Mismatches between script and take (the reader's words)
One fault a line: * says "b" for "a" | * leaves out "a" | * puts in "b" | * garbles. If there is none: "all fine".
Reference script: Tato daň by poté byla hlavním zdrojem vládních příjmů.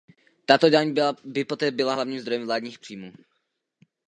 all fine